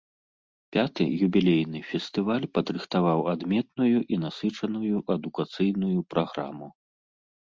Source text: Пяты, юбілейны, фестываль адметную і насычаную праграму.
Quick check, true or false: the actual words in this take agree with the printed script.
false